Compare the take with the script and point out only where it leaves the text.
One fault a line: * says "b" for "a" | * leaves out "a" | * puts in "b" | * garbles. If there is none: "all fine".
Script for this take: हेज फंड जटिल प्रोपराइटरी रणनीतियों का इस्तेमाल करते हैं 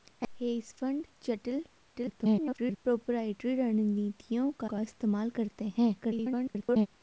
* garbles
* puts in "का"
* garbles